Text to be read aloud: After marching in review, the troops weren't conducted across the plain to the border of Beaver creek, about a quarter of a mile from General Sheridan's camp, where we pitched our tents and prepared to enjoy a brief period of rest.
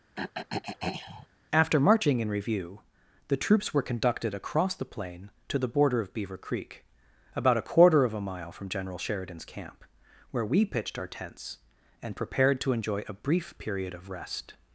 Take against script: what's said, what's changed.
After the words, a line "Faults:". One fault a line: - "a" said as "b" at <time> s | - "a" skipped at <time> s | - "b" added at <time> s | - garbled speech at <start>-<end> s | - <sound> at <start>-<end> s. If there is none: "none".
After marching in review, the troops were conducted across the plain to the border of Beaver creek, about a quarter of a mile from General Sheridan's camp, where we pitched our tents and prepared to enjoy a brief period of rest.
Faults:
- throat clearing at 0.2-1.3 s
- "weren't" said as "were" at 3.7 s